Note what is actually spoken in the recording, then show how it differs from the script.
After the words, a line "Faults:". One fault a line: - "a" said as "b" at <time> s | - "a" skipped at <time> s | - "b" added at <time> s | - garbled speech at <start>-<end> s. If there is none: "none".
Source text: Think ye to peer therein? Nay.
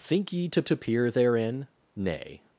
Think ye to to peer therein? Nay.
Faults:
- "to" added at 0.6 s